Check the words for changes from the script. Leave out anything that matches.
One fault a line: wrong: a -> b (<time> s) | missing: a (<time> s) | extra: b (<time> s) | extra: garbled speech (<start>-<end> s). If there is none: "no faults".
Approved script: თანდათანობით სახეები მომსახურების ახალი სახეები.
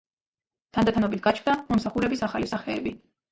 wrong: სახეები -> გაჩნდა (1.3 s)